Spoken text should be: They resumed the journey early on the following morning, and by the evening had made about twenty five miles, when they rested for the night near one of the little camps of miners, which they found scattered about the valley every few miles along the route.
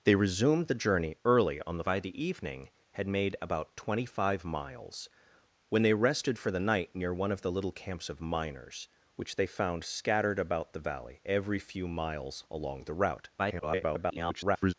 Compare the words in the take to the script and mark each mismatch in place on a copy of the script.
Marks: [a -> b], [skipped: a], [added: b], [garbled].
They resumed the journey early on the [skipped: following morning, and] by the evening had made about twenty five miles, when they rested for the night near one of the little camps of miners, which they found scattered about the valley every few miles along the route. [garbled]